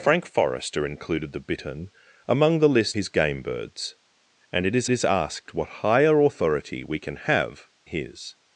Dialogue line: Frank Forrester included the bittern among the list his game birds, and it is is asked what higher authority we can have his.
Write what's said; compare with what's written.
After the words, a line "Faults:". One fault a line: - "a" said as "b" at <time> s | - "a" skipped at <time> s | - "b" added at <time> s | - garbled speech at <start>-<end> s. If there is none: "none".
Frank Forrester included the bittern among the list his game birds, and it is is asked what higher authority we can have his.
Faults:
none